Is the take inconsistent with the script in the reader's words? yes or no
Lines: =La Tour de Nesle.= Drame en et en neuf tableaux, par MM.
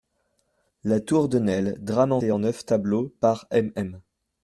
no